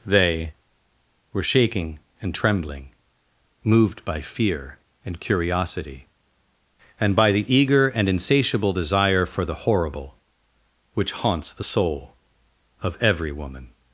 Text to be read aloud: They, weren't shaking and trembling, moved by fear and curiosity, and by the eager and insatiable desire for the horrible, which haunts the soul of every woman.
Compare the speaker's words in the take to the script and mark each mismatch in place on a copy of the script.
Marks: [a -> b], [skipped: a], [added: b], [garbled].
They, [weren't -> were] shaking and trembling, moved by fear and curiosity, and by the eager and insatiable desire for the horrible, which haunts the soul of every woman.